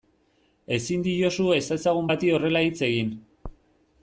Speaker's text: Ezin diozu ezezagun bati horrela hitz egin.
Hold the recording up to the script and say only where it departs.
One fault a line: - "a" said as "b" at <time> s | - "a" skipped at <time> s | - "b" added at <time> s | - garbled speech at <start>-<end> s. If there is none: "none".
none